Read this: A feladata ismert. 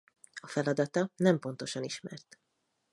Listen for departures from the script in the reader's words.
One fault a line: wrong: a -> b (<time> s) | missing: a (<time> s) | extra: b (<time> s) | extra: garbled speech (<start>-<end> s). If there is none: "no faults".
extra: nem pontosan (1.2 s)